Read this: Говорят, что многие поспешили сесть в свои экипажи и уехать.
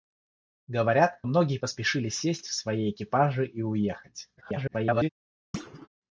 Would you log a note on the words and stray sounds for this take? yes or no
yes